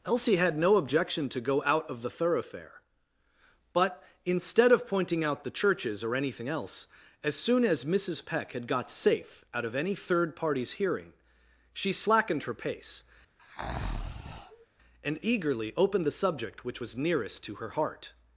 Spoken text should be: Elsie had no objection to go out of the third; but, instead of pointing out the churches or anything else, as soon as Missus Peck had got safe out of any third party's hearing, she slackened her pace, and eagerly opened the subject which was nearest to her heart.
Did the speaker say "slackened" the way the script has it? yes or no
yes